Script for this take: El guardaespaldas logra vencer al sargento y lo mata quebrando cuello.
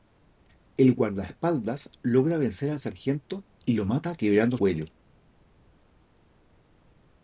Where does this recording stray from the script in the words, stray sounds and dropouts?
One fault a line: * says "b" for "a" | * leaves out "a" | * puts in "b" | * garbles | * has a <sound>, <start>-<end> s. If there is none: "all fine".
all fine